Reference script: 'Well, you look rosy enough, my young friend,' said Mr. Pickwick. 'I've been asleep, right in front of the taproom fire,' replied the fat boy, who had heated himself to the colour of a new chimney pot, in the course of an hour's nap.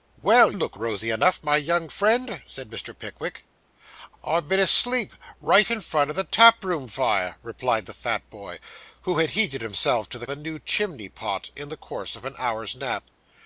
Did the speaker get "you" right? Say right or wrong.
wrong